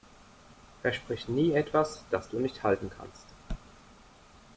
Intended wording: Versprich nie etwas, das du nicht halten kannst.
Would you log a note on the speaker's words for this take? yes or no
no